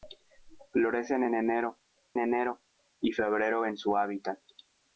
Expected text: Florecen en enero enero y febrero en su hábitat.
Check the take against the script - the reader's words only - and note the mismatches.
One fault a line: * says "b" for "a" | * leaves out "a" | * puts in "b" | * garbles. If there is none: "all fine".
all fine